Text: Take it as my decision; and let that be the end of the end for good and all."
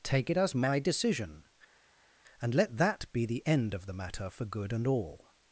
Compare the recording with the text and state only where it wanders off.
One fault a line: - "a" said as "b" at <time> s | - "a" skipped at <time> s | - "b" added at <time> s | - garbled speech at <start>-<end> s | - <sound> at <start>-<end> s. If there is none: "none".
- "end" said as "matter" at 3.9 s